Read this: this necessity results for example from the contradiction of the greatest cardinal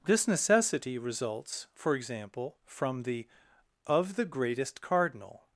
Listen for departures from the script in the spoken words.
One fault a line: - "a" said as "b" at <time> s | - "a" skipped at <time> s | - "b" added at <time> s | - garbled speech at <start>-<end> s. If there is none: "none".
- "contradiction" skipped at 3.3 s